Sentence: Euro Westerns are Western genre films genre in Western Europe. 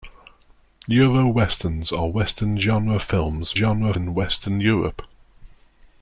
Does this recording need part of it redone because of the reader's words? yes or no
no